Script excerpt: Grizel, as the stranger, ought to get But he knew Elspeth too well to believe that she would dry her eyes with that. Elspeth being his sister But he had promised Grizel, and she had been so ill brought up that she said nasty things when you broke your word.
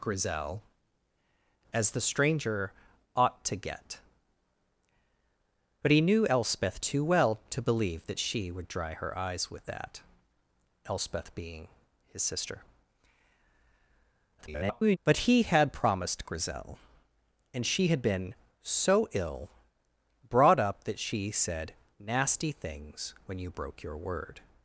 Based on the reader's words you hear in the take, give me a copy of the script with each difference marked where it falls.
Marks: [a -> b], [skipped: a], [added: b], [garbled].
Grizel, as the stranger, ought to get But he knew Elspeth too well to believe that she would dry her eyes with that. Elspeth being his sister [garbled] But he had promised Grizel, and she had been so ill brought up that she said nasty things when you broke your word.